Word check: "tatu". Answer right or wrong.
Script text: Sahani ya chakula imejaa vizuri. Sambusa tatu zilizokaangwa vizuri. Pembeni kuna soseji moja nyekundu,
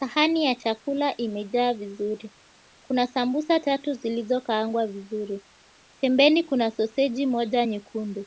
right